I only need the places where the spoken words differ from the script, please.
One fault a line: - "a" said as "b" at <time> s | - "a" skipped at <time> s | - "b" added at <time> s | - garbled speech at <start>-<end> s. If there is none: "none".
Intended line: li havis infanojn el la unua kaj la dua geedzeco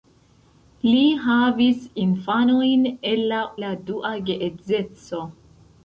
- "unua kaj" skipped at 3.4 s